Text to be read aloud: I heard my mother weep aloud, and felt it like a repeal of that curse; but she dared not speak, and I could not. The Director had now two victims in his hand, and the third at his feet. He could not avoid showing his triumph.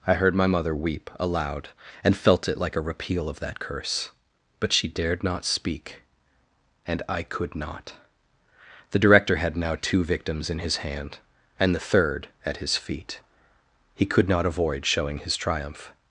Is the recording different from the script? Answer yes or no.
no